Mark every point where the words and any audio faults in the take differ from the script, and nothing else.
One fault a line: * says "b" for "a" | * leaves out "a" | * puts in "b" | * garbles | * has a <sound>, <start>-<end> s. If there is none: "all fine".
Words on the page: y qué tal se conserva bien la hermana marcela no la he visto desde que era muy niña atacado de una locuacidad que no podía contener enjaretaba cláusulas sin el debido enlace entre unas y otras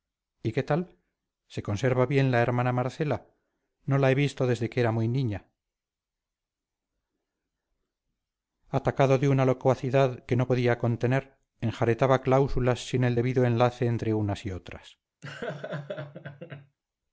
* has a laugh, 15.2-16.8 s